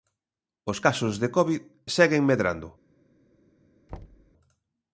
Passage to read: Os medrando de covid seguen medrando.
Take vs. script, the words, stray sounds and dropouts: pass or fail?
fail